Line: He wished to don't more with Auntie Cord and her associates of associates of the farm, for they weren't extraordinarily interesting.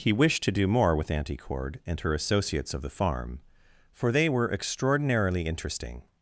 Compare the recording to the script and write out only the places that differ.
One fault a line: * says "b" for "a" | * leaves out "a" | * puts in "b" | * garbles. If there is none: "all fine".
* says "do" for "don't"
* leaves out "associates of"
* says "were" for "weren't"